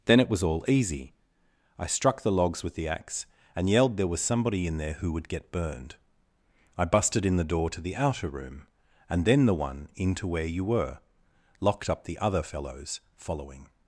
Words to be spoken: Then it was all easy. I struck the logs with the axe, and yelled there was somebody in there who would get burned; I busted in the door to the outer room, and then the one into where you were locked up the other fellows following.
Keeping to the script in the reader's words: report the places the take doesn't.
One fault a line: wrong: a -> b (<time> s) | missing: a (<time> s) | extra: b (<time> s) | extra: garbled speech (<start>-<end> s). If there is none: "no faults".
no faults